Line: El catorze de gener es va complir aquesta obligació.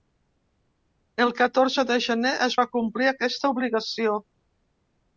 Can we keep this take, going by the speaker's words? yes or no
yes